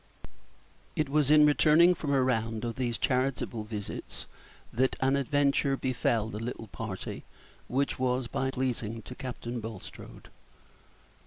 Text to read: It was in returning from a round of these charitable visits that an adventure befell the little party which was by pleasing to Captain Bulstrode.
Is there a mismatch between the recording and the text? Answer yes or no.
no